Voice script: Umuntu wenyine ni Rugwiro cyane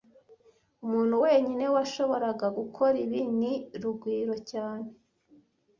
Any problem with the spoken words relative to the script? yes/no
yes